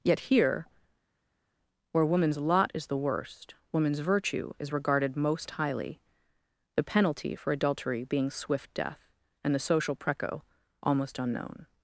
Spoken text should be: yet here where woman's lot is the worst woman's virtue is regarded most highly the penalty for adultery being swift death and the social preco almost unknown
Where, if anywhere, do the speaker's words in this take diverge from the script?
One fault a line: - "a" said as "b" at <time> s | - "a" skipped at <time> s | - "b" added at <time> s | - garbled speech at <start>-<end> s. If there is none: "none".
none